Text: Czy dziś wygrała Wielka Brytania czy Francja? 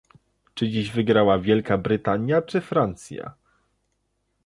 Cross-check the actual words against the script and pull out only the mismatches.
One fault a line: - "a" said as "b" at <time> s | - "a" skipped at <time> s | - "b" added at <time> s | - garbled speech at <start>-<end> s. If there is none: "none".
none